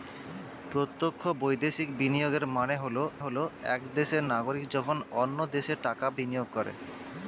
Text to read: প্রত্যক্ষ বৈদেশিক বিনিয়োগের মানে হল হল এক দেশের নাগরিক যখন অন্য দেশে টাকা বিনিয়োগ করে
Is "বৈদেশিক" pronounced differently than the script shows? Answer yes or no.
no